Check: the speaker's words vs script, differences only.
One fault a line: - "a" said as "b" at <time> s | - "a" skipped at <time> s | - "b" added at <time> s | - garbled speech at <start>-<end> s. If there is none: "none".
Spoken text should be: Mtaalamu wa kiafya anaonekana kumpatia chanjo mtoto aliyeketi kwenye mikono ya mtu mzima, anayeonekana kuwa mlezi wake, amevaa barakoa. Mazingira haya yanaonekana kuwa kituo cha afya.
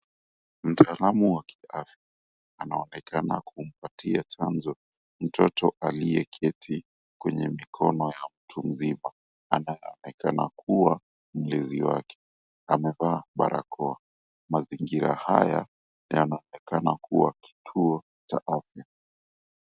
none